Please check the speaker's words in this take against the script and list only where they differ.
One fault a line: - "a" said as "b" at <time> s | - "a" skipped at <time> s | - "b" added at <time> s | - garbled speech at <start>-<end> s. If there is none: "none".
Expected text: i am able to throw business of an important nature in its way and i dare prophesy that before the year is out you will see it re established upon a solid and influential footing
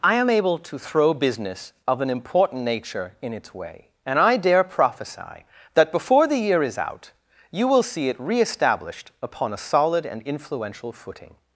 none